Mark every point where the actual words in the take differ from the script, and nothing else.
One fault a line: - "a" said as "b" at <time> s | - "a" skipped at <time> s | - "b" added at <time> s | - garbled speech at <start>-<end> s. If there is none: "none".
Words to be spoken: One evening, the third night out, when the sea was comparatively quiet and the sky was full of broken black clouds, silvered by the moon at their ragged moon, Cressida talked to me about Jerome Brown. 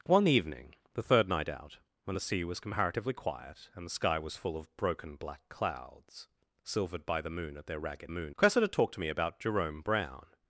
none